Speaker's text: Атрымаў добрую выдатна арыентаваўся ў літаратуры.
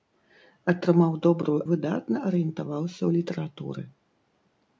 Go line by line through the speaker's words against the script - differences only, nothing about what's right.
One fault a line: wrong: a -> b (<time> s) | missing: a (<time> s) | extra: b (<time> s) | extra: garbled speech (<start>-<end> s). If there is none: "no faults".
no faults